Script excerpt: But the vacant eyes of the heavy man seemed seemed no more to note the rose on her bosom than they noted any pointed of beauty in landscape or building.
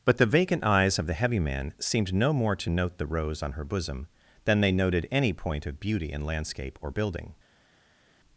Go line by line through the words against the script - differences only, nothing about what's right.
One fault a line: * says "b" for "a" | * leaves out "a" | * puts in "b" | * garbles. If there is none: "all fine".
* leaves out "seemed"
* says "point" for "pointed"